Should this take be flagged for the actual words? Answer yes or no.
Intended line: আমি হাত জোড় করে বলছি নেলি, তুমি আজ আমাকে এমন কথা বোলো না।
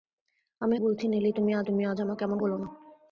yes